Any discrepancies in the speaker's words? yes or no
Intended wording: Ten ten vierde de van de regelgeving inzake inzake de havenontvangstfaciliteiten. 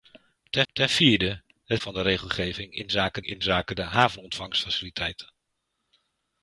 no